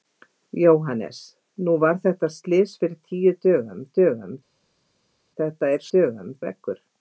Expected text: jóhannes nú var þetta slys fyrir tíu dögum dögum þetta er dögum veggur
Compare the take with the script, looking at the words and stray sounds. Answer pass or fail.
pass